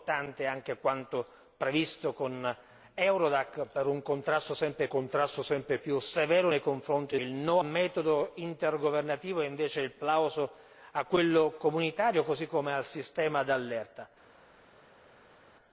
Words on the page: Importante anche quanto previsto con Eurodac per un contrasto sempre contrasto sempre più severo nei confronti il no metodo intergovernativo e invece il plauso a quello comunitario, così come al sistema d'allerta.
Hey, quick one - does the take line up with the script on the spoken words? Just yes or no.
yes